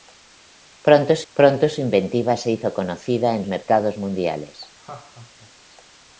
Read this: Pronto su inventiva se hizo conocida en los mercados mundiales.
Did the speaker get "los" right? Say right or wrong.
wrong